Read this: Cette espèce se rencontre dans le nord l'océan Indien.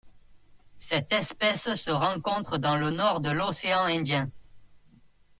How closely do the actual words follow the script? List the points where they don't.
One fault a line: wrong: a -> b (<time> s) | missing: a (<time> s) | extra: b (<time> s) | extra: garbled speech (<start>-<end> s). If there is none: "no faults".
extra: de (3.2 s)